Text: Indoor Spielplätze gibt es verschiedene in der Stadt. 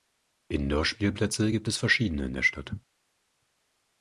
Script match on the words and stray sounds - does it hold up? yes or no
yes